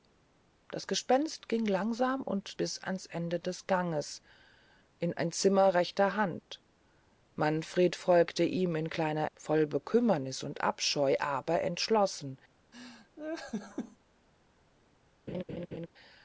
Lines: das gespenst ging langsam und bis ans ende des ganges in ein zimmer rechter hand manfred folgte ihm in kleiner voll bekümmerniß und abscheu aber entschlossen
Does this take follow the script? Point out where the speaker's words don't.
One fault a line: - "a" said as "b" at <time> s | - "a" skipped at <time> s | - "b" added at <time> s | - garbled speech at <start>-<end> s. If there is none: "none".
none